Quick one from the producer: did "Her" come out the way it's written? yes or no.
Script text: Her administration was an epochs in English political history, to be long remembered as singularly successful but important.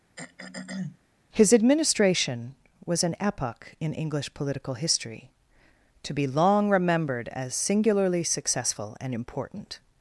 no